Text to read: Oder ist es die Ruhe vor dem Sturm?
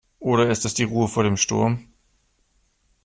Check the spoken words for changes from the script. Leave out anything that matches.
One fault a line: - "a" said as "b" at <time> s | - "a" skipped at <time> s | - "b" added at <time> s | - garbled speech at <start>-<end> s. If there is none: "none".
none